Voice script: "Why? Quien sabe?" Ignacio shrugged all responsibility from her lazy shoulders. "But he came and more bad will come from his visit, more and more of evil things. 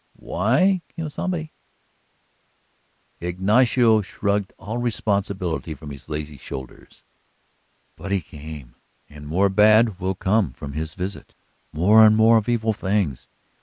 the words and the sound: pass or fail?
fail